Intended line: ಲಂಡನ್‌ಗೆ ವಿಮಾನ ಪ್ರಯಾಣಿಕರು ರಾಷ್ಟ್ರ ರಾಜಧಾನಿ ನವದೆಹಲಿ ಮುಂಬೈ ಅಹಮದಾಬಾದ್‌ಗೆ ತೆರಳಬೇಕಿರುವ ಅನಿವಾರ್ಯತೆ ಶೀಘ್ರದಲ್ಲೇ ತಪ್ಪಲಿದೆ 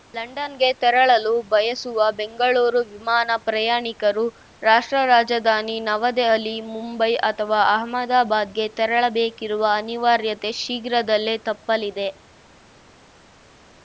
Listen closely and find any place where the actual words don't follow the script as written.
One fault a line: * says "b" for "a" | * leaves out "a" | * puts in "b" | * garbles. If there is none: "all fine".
* puts in "ತೆರಳಲು ಬಯಸುವ ಬೆಂಗಳೂರು"
* puts in "ಅಥವಾ"